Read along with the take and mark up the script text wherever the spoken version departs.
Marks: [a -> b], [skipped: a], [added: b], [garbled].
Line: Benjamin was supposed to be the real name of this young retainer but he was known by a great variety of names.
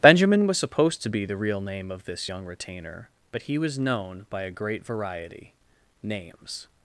Benjamin was supposed to be the real name of this young retainer but he was known by a great variety [skipped: of] names.